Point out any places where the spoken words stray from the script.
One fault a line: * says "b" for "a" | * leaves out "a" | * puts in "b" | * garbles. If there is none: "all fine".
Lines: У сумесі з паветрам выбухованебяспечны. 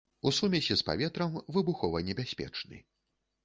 all fine